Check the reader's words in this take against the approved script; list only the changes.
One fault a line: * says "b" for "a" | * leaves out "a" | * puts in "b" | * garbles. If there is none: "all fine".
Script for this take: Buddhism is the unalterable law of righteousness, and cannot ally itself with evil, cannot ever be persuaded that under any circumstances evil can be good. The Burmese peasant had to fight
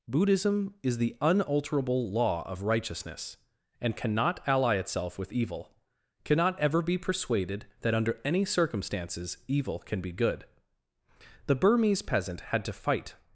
all fine